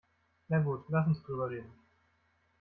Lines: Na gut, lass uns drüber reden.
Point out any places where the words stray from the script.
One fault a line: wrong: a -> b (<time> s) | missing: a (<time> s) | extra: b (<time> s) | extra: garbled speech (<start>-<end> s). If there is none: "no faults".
no faults